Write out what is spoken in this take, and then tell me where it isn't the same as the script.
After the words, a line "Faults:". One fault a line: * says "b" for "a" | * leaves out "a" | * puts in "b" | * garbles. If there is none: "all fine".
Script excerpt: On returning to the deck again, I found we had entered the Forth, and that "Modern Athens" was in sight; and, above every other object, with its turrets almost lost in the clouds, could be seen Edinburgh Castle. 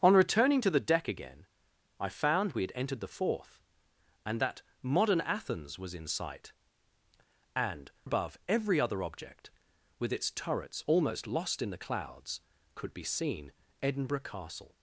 On returning to the deck again, I found we had entered the Forth, and that "Modern Athens" was in sight; and, above every other object, with its turrets almost lost in the clouds, could be seen Edinburgh Castle.
Faults:
all fine